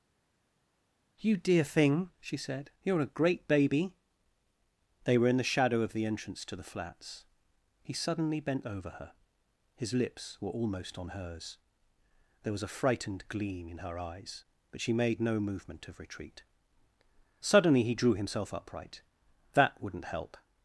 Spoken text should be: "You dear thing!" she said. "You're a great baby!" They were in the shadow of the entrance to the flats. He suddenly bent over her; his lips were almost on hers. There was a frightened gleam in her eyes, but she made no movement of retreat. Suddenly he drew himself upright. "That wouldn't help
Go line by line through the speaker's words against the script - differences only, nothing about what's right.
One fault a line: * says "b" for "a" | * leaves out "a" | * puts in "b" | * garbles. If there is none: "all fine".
all fine